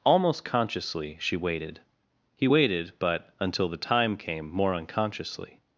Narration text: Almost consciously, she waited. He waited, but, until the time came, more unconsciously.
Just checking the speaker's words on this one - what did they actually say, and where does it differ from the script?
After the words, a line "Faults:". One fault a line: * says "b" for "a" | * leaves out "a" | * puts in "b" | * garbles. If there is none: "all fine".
Almost consciously, she waited. He waited, but, until the time came, more unconsciously.
Faults:
all fine